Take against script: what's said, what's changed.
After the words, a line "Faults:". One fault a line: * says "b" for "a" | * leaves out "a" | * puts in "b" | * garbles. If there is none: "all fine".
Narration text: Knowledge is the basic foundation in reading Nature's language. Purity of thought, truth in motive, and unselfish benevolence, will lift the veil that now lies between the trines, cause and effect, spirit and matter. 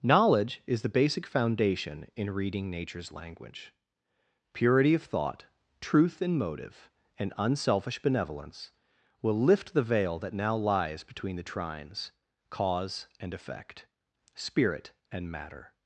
Knowledge is the basic foundation in reading Nature's language. Purity of thought, truth in motive, and unselfish benevolence, will lift the veil that now lies between the trines, cause and effect, spirit and matter.
Faults:
all fine